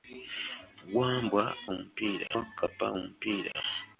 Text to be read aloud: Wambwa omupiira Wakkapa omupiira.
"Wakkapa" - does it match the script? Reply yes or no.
yes